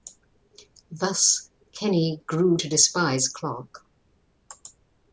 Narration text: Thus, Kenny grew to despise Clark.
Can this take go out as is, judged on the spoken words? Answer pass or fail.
pass